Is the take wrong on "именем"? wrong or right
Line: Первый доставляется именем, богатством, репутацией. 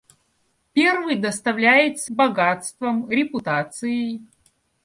wrong